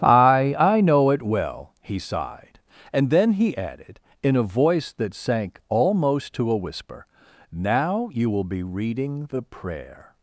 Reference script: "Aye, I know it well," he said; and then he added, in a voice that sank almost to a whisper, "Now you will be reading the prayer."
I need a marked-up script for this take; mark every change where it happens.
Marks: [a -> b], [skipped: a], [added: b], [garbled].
"Aye, I know it well," he [said; -> sighed] and then he added, in a voice that sank almost to a whisper, "Now you will be reading the prayer."